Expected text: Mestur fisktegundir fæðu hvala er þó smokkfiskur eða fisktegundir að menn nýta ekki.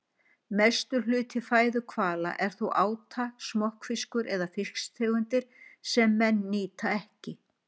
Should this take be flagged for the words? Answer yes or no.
yes